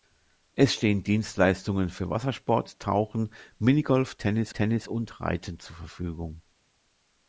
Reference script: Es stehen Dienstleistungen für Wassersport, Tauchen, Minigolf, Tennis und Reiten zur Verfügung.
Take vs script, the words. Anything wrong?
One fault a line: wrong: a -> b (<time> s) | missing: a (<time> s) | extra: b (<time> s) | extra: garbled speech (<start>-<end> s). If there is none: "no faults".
extra: Tennis (4.5 s)